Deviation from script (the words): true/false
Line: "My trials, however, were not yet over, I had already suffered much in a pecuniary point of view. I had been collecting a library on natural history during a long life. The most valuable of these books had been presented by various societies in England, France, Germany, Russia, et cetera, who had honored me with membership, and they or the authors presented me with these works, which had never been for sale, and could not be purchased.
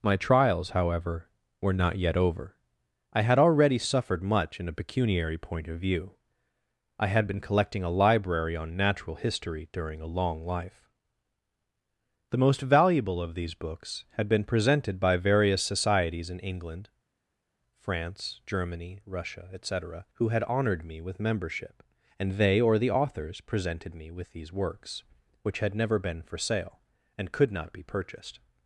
false